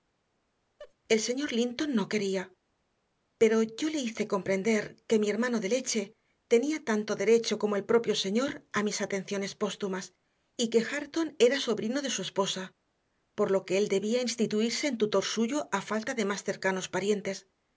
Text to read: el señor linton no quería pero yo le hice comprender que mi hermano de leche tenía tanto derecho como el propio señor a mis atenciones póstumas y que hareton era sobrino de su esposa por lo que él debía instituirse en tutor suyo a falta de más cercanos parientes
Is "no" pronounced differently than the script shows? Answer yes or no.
no